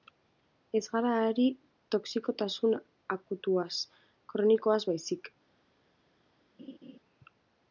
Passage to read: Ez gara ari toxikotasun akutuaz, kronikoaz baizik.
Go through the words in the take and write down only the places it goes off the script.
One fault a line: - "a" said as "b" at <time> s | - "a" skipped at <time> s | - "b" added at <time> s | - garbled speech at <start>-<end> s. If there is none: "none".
none